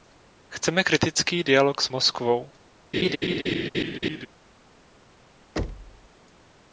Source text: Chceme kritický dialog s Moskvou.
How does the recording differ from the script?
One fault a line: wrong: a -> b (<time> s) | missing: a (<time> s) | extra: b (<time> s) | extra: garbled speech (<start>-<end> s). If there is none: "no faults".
no faults